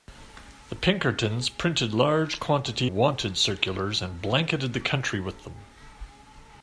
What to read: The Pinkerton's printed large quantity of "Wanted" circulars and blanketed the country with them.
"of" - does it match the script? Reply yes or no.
no